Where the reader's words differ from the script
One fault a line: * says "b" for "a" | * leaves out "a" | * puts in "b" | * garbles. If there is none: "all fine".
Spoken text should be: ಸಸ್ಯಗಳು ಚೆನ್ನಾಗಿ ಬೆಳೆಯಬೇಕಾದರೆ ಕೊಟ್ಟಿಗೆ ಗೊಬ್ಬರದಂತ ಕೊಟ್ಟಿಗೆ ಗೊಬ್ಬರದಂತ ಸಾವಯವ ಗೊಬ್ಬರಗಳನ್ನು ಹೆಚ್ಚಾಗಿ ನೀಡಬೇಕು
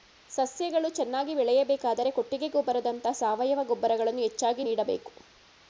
* leaves out "ಕೊಟ್ಟಿಗೆ ಗೊಬ್ಬರದಂತ"